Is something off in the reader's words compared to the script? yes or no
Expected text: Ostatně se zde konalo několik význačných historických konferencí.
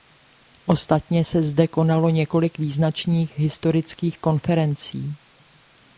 no